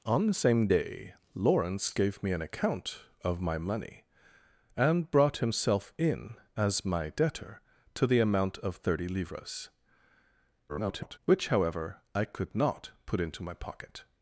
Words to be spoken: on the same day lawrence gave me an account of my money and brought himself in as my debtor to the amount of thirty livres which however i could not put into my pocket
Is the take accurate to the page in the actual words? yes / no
no